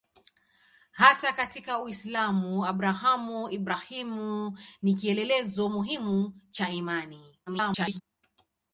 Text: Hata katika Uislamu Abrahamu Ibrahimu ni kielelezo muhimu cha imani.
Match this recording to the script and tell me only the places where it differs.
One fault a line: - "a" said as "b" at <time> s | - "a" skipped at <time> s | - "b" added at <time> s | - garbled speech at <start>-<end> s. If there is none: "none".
- garbled speech at 7.5-8.0 s